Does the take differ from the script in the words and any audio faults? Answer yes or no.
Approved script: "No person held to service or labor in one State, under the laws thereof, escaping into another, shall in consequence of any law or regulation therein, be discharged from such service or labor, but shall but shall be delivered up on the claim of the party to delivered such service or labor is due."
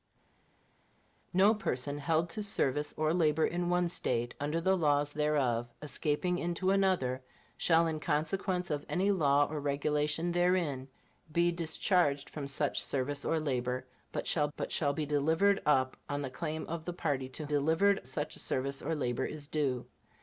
no